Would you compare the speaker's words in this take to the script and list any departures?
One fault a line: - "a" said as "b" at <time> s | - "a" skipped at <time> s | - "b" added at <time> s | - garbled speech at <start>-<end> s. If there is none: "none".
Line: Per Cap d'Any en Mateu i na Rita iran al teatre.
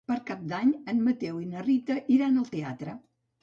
none